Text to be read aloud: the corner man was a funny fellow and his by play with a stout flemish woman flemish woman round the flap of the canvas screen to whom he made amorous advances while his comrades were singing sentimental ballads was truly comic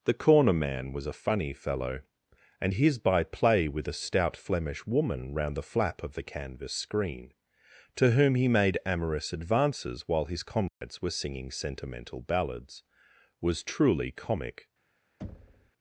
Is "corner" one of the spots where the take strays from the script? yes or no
no